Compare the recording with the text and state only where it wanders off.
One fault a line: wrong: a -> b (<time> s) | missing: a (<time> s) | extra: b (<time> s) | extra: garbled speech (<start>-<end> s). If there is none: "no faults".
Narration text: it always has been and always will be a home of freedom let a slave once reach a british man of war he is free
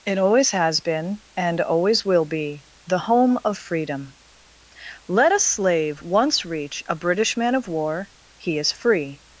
wrong: a -> the (2.9 s)